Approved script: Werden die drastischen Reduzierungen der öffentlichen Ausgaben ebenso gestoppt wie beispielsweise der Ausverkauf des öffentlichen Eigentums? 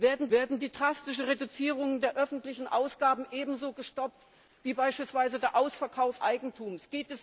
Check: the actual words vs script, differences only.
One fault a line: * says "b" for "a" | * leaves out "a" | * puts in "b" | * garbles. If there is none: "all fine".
* puts in "werden"
* leaves out "des öffentlichen"